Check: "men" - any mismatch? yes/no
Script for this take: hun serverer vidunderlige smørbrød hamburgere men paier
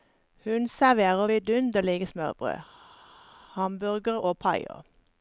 yes